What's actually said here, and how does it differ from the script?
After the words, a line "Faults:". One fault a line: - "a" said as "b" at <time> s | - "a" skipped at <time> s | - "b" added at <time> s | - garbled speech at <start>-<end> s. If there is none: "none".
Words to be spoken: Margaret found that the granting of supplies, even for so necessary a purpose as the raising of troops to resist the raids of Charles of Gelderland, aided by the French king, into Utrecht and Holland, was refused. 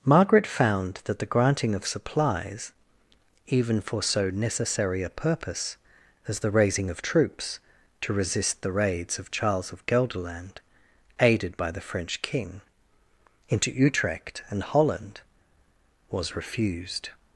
Margaret found that the granting of supplies, even for so necessary a purpose as the raising of troops to resist the raids of Charles of Gelderland, aided by the French king, into Utrecht and Holland, was refused.
Faults:
none